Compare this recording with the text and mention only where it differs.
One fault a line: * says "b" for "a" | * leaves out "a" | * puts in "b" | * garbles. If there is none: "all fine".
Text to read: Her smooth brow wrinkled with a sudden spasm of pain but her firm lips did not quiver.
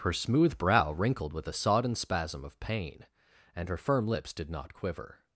* says "sodden" for "sudden"
* says "and" for "but"